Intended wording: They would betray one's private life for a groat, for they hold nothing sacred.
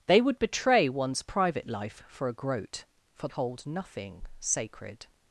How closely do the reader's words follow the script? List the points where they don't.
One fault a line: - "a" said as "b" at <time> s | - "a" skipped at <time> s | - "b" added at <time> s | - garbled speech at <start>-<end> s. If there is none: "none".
- "they" skipped at 3.3 s